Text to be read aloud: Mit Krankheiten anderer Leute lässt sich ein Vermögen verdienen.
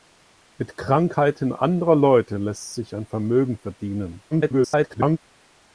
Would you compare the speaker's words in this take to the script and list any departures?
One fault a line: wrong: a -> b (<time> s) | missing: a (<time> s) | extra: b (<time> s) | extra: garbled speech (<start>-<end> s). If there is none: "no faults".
extra: garbled speech (4.3-5.2 s)